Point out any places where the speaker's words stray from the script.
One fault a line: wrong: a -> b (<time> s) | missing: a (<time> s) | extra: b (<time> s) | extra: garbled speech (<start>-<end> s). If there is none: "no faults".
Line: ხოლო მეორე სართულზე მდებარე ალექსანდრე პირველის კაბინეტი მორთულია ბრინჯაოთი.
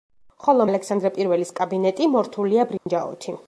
missing: მეორე სართულზე მდებარე (0.7 s)